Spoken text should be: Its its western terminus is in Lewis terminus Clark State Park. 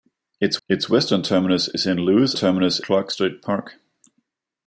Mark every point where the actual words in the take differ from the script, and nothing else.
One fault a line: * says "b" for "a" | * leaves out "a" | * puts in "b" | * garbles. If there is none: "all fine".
all fine